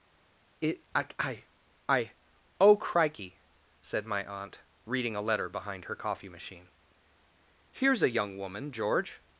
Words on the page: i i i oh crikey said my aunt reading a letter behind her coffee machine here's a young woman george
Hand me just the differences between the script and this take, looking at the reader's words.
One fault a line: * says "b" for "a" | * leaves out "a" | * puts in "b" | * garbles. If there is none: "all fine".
* puts in "it"